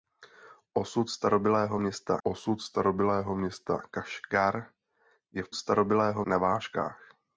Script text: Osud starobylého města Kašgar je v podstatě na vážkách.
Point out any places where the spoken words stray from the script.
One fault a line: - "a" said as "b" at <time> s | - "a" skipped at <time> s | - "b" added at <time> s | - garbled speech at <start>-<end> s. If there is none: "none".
- "osud starobylého města" added at 2.2 s
- "podstatě" said as "starobylého" at 5.5 s